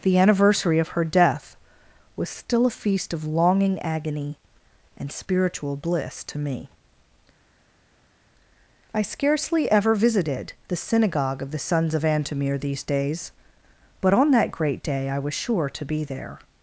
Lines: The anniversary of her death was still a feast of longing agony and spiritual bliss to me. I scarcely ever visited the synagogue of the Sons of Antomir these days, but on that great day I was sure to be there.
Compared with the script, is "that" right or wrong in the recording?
right